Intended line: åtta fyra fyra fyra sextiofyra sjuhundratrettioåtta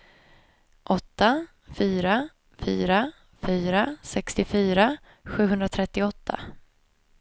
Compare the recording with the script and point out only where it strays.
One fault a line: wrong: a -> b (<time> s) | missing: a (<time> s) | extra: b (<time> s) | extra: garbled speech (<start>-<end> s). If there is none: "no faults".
no faults